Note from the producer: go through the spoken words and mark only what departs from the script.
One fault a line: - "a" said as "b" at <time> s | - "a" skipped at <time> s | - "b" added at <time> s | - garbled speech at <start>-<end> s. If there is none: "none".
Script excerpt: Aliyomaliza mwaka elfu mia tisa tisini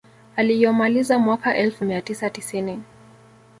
none